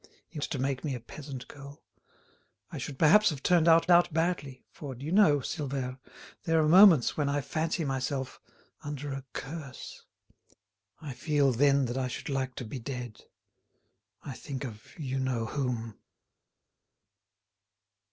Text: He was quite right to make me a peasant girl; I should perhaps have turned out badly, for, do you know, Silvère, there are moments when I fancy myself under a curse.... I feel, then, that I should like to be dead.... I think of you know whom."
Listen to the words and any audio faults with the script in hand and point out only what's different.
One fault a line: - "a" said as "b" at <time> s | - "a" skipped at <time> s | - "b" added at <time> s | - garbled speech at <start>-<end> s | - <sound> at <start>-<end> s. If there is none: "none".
- "was quite right" skipped at 0.4 s
- "out" added at 3.9 s